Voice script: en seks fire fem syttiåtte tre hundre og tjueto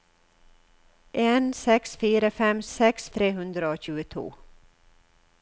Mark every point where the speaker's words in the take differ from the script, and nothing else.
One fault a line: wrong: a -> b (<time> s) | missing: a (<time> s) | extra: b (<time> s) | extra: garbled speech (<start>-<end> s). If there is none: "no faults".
wrong: syttiåtte -> seks (2.7 s)